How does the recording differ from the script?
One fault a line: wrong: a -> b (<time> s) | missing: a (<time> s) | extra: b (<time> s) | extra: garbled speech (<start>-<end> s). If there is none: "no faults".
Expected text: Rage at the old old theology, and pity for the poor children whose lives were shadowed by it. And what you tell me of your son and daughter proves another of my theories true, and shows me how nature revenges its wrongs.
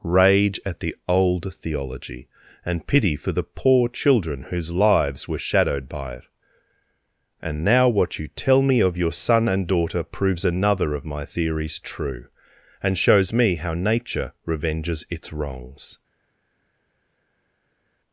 missing: old (1.5 s)
extra: now (7.6 s)